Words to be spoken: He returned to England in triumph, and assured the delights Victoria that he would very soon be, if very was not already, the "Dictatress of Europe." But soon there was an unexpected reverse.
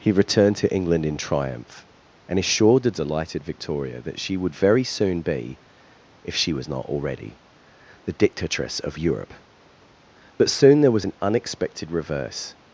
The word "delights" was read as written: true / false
false